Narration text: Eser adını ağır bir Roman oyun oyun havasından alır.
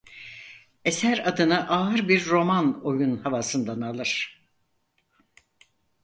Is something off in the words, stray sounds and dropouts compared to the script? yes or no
yes